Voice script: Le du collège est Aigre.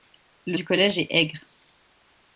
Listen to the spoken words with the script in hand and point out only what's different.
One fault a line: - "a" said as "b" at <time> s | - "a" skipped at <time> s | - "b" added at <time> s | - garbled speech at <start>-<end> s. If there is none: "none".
none